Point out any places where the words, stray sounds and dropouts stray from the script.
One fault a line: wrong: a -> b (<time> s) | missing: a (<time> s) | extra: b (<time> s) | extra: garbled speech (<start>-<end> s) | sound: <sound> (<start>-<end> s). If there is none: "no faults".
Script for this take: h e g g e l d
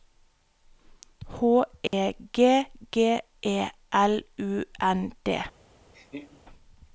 sound: dropout (1.9-1.9 s)
extra: u n (4.4 s)
sound: laugh (5.9-6.4 s)